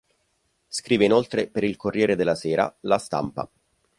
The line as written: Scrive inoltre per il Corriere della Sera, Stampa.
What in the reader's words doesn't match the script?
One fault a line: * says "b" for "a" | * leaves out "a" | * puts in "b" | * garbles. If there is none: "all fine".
* puts in "La"